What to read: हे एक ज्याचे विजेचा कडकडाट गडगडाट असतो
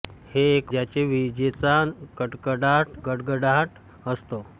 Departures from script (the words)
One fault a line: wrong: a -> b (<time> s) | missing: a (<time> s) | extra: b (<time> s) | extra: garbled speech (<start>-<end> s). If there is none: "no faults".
no faults